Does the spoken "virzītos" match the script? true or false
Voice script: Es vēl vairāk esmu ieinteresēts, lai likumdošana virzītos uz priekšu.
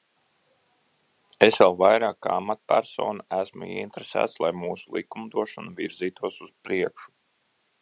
true